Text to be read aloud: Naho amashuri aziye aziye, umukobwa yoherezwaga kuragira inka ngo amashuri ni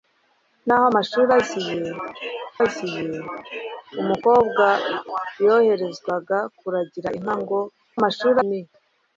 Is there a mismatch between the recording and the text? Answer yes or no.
no